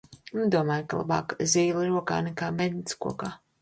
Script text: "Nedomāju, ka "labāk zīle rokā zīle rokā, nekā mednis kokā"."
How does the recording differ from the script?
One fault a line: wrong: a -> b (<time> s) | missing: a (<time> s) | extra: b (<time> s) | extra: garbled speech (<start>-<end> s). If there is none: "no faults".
missing: zīle rokā (2.2 s)